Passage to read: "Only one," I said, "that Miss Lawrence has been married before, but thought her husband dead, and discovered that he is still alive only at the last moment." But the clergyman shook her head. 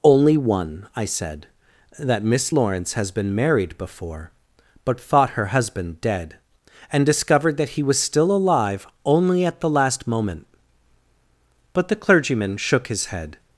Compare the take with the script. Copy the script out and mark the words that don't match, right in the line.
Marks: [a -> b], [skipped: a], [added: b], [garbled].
"Only one," I said, "that Miss Lawrence has been married before, but thought her husband dead, and discovered that he [is -> was] still alive only at the last moment." But the clergyman shook [her -> his] head.